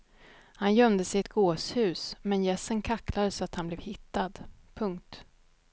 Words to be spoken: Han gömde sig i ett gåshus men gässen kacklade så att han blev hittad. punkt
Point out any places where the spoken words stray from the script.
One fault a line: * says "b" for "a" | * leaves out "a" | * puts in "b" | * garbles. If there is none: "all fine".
all fine